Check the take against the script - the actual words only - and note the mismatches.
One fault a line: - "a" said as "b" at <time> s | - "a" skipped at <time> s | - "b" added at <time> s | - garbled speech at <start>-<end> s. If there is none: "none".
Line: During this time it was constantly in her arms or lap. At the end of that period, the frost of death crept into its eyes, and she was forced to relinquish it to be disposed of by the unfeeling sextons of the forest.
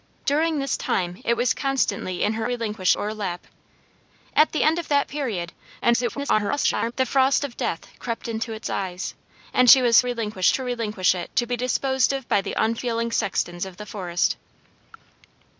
- "arms" said as "relinquish" at 2.4 s
- garbled speech at 5.8-6.9 s
- "forced" said as "relinquish" at 10.0 s